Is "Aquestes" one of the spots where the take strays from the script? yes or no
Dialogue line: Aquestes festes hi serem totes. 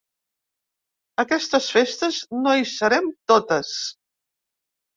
no